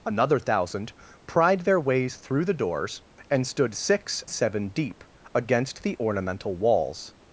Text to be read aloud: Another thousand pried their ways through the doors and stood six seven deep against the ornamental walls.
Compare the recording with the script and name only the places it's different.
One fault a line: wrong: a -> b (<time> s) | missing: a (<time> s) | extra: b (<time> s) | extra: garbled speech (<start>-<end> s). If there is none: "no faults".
no faults